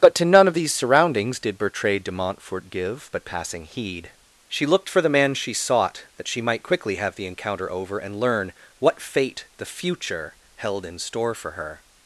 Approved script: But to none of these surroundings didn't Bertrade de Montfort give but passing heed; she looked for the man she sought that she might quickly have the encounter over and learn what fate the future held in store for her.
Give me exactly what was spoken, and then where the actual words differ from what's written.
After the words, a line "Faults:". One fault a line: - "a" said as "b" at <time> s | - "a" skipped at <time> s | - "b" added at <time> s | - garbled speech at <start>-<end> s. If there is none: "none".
But to none of these surroundings did Bertrade de Montfort give but passing heed; she looked for the man she sought that she might quickly have the encounter over and learn what fate the future held in store for her.
Faults:
- "didn't" said as "did" at 1.4 s